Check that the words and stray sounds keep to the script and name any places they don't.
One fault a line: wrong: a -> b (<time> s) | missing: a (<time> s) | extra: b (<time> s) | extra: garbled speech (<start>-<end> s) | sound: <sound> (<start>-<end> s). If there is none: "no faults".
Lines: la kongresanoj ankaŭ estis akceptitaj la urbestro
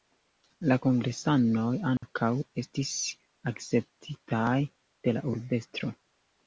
sound: dropout (2.0-2.0 s)
extra: de (4.7 s)